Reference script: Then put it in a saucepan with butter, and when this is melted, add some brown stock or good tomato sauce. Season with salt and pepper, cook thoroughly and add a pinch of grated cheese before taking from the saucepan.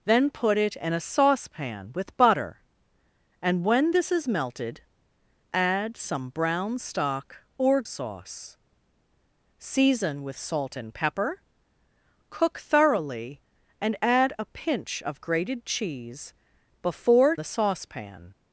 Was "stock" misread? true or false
false